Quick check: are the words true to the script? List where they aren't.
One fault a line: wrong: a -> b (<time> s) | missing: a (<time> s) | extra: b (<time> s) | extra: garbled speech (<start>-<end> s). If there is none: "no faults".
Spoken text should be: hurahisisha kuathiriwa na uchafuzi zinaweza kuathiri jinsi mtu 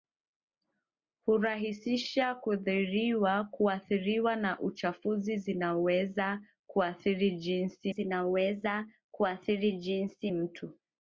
extra: zinaweza kuathiri jinsi (7.9 s)